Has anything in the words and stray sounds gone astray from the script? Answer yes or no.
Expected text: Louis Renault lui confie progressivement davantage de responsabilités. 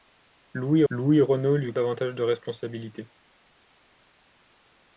yes